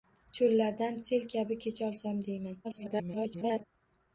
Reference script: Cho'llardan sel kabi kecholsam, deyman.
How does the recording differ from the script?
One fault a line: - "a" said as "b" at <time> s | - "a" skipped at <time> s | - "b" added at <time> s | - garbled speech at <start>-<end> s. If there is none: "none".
- garbled speech at 2.6-3.6 s